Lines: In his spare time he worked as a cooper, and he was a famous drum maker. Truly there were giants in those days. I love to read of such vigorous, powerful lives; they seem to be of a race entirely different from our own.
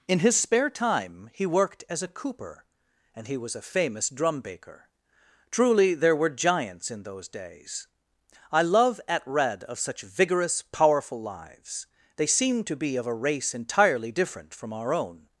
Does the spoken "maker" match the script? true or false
false